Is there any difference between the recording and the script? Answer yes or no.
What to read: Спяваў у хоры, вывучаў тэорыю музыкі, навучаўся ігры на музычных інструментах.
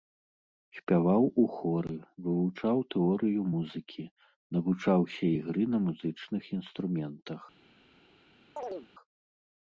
no